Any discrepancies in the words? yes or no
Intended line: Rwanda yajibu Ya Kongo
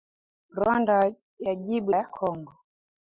no